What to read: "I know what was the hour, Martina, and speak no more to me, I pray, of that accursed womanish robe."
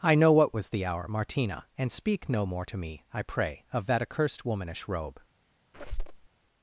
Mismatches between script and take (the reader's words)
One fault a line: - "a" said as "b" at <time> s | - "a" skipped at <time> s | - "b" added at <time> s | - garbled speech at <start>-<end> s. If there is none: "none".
none